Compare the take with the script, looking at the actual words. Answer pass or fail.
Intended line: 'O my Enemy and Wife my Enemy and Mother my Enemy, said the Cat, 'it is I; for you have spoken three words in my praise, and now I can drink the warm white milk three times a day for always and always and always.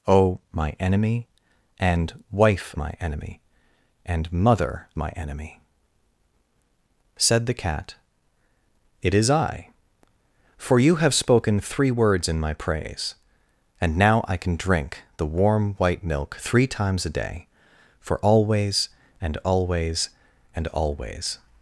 pass